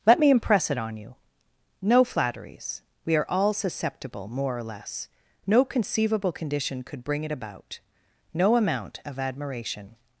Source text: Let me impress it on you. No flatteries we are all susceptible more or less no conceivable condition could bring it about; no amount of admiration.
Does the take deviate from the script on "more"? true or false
false